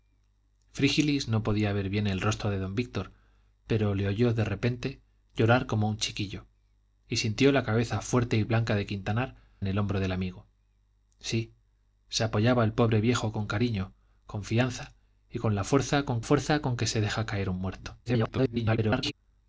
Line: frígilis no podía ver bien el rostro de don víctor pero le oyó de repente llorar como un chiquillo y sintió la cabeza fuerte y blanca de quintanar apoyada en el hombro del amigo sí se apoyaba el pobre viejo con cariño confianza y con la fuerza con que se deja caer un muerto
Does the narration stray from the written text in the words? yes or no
yes